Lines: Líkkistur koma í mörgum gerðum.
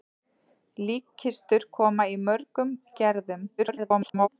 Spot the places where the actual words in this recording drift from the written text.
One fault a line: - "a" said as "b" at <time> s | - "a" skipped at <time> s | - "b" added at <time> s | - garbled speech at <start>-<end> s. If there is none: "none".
- garbled speech at 3.6-4.3 s